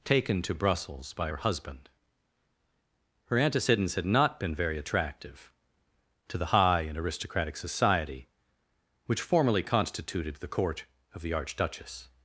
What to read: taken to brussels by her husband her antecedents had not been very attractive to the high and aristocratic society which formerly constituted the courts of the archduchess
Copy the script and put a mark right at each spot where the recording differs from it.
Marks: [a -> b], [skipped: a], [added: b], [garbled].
taken to brussels by her husband her antecedents had not been very attractive to the high and aristocratic society which formerly constituted the [courts -> court] of the archduchess